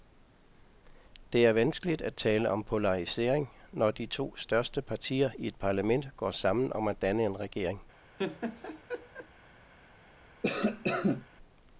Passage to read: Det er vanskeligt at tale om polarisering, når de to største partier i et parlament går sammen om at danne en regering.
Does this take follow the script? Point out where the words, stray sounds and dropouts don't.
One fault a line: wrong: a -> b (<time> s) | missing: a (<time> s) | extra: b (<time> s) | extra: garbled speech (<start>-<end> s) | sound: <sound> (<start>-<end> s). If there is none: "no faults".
sound: laugh (8.2-9.3 s)
sound: cough (10.4-11.3 s)